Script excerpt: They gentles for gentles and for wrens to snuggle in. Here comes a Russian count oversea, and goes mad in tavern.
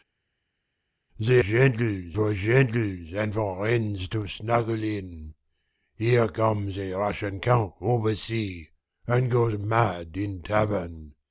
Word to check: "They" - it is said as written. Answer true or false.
true